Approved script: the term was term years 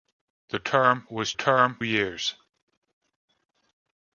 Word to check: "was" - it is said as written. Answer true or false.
true